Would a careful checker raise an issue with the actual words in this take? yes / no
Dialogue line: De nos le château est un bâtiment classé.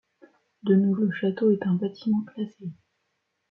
no